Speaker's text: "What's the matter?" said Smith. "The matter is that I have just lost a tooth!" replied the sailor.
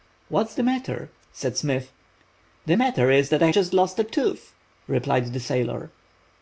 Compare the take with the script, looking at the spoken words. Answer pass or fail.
fail